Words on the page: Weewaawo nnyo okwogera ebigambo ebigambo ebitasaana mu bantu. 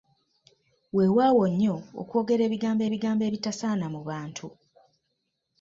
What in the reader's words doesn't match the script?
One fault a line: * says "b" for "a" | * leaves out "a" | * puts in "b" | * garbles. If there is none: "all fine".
all fine